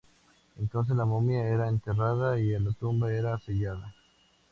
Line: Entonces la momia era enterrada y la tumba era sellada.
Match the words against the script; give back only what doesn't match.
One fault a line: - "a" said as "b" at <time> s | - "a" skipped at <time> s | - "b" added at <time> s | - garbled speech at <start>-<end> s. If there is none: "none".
none